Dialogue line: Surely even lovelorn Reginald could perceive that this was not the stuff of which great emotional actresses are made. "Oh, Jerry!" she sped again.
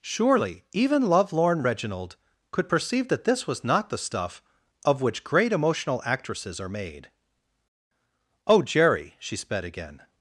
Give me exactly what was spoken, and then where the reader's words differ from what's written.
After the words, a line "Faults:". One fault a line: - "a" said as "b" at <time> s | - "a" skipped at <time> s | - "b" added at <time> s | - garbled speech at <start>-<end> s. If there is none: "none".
Surely even lovelorn Reginald could perceive that this was not the stuff of which great emotional actresses are made. "Oh, Jerry!" she sped again.
Faults:
none